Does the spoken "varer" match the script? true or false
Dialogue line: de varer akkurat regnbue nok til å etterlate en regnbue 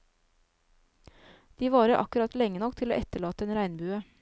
true